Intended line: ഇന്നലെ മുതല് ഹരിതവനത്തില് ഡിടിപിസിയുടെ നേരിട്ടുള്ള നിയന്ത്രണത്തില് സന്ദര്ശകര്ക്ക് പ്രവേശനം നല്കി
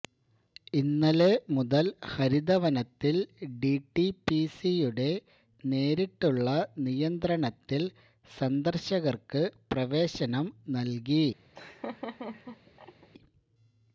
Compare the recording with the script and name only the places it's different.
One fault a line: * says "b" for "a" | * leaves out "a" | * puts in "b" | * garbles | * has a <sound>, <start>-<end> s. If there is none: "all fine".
* has a laugh, 11.5-13.1 s